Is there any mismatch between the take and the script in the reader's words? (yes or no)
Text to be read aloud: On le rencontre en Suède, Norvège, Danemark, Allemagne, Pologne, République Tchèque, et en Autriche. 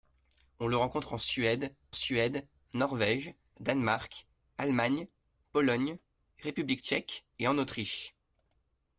yes